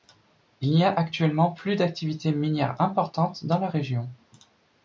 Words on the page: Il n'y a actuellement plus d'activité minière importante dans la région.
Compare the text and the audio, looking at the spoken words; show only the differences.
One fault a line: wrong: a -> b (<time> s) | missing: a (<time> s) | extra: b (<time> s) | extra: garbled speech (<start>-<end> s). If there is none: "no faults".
no faults